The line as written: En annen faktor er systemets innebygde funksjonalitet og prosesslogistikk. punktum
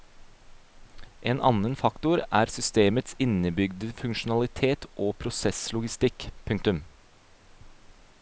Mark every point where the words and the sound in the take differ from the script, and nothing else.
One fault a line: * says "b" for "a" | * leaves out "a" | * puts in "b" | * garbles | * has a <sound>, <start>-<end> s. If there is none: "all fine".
all fine